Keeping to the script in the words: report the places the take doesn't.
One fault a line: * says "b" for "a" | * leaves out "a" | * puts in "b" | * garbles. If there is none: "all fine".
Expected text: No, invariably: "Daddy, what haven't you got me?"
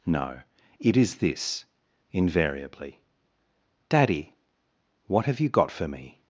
* puts in "it is this"
* says "have" for "haven't"
* puts in "for"